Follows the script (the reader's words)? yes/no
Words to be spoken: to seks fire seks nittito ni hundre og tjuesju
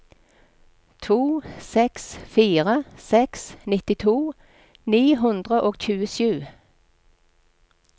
yes